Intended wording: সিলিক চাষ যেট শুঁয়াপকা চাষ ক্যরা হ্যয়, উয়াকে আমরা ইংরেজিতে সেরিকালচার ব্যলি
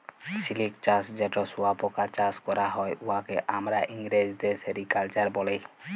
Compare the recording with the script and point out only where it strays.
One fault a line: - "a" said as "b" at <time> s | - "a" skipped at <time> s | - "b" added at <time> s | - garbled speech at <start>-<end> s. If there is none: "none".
none